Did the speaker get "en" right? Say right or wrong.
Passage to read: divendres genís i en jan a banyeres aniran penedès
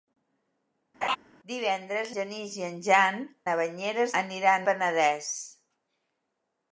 right